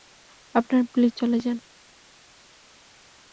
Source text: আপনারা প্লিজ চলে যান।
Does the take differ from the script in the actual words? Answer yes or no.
no